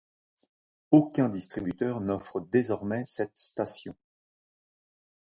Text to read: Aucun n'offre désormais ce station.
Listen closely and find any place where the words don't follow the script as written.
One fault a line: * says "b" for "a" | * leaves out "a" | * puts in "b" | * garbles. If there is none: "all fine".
* puts in "distributeur"
* says "cette" for "ce"